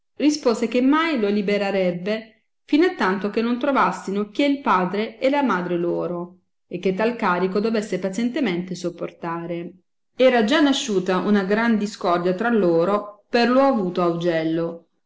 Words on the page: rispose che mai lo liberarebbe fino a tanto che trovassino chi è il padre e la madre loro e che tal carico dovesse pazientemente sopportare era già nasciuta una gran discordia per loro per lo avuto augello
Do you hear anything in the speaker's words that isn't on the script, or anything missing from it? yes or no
yes